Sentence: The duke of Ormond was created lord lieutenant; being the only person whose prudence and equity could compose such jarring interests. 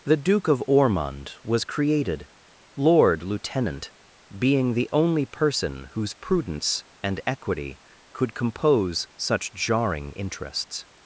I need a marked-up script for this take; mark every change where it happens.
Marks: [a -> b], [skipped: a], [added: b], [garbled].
The duke of Ormond was created lord lieutenant; being the only person whose prudence and equity could compose such jarring interests.